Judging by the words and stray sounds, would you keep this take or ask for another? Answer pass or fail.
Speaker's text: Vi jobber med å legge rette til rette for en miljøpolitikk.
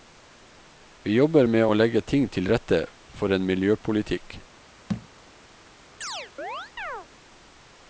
fail